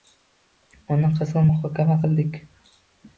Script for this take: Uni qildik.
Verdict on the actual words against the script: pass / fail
fail